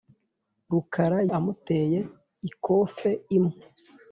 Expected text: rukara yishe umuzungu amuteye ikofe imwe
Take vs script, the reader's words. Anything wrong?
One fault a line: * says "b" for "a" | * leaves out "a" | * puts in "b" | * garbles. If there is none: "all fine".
* leaves out "yishe umuzungu"